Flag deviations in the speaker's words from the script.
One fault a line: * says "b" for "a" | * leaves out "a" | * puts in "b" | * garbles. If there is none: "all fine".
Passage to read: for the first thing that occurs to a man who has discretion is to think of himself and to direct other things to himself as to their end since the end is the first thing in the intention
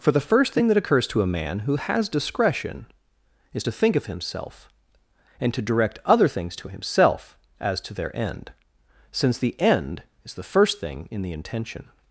all fine